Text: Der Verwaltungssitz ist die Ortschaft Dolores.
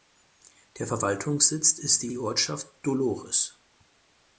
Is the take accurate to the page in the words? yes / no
no